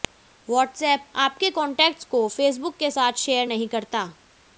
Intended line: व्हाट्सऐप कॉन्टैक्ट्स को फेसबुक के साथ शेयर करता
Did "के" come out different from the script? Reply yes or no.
no